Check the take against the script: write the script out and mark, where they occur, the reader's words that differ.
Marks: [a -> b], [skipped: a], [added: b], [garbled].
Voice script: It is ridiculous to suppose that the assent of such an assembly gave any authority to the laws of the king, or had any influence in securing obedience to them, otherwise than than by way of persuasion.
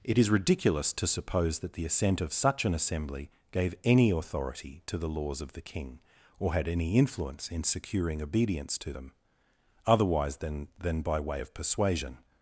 It is ridiculous to suppose that the assent of such an assembly gave any authority to the laws of the king, or had any influence in securing obedience to them, otherwise than than by way of persuasion.